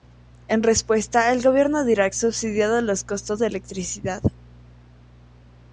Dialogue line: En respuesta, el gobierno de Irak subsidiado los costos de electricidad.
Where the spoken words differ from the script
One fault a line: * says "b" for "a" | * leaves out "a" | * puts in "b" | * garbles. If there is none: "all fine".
all fine